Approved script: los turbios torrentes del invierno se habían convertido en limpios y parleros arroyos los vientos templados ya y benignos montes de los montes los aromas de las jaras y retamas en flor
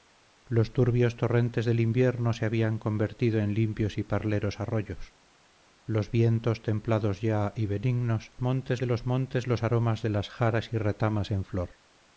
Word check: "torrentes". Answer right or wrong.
right